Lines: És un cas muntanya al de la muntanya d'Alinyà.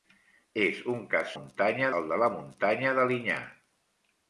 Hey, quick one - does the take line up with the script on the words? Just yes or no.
yes